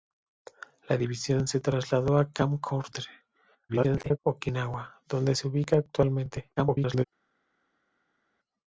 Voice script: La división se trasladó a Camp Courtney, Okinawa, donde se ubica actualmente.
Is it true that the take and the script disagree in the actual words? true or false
true